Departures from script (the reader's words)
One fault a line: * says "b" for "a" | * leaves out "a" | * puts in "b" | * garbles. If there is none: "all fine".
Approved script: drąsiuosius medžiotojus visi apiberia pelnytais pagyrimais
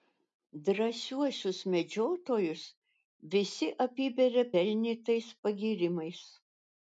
all fine